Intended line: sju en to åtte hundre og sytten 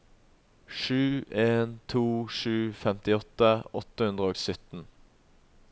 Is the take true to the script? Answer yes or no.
no